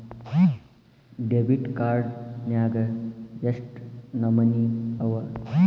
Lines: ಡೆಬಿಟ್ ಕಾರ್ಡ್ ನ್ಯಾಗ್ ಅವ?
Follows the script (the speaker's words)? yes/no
no